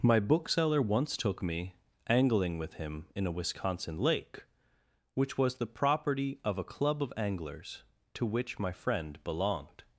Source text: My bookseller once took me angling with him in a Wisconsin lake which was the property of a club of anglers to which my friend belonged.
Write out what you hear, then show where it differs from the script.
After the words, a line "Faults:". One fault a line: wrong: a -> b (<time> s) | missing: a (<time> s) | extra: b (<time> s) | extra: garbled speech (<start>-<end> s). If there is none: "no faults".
My bookseller once took me angling with him in a Wisconsin lake which was the property of a club of anglers to which my friend belonged.
Faults:
no faults